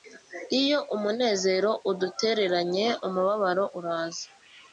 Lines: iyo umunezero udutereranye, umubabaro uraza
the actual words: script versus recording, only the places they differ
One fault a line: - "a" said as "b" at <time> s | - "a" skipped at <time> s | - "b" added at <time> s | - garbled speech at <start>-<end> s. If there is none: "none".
none